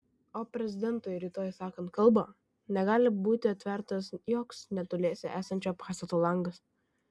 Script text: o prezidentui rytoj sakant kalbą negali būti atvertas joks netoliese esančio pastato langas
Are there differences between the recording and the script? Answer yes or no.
no